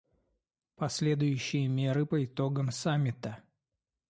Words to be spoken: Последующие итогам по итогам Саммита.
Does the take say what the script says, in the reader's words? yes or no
no